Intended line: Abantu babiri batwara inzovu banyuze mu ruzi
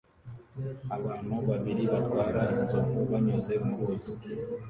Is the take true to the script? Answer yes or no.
yes